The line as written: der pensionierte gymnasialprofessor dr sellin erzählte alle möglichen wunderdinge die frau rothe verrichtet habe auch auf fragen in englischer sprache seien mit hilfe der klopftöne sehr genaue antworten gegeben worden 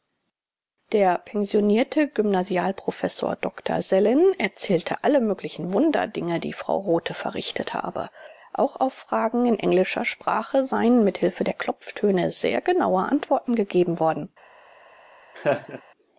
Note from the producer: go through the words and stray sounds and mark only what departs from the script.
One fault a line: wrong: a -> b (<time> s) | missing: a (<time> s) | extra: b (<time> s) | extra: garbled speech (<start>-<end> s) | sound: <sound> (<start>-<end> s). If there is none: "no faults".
sound: laugh (15.3-15.8 s)